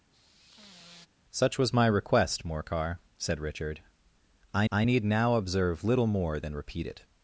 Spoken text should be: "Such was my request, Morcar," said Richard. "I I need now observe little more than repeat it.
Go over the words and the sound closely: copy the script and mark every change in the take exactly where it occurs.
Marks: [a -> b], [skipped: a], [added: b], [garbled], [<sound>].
[sigh] "Such was my request, Morcar," said Richard. "I I need now observe little more than repeat it.